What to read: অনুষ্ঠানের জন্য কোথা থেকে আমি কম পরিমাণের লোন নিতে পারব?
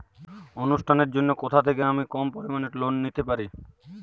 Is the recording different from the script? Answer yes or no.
no